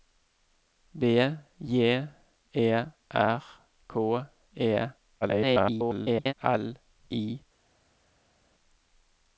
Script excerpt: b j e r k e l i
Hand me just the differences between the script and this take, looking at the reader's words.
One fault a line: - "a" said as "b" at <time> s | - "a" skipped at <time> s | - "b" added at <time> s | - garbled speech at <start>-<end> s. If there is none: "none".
- garbled speech at 5.2-6.3 s